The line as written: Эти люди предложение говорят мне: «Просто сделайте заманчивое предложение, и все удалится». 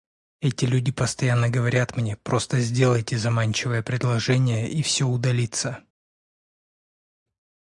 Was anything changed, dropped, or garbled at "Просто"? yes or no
no